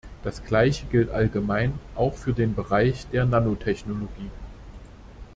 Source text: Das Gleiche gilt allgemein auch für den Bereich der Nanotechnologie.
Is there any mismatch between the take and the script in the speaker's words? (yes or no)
no